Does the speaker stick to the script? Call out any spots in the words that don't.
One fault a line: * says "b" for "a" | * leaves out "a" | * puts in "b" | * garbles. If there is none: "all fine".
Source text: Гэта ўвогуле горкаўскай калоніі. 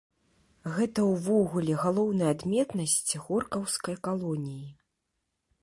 * puts in "галоўная адметнасць"